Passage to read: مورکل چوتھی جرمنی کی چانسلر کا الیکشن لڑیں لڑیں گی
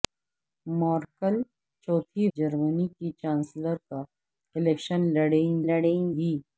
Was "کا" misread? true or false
false